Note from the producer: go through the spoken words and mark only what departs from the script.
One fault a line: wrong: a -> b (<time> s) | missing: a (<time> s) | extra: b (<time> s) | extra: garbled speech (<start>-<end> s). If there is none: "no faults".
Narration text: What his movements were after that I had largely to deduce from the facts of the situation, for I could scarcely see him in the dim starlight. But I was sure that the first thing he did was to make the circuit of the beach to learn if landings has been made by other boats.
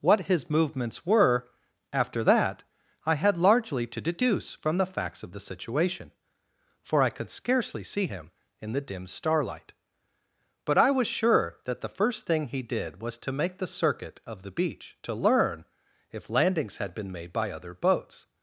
wrong: has -> had (16.8 s)